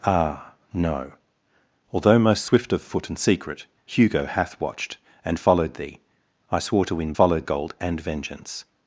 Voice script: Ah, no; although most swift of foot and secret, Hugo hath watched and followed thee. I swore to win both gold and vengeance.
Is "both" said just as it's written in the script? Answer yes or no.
no